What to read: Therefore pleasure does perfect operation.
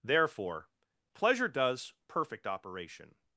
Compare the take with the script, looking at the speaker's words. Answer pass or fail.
pass